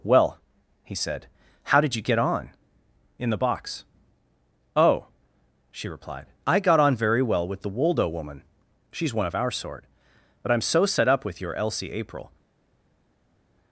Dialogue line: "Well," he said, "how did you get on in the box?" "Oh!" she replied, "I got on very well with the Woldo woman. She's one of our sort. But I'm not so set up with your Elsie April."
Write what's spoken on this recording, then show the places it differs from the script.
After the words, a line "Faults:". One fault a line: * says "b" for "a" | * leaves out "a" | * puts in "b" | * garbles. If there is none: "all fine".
"Well," he said, "how did you get on in the box?" "Oh!" she replied, "I got on very well with the Woldo woman. She's one of our sort. But I'm so set up with your Elsie April."
Faults:
* leaves out "not"